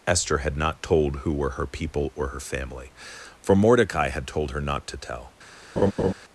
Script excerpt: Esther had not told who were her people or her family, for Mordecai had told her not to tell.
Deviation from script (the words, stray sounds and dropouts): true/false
true